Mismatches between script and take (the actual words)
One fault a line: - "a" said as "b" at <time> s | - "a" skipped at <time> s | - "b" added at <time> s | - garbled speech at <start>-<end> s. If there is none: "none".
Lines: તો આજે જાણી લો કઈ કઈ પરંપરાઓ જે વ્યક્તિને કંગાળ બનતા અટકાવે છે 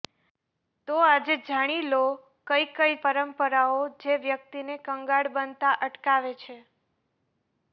none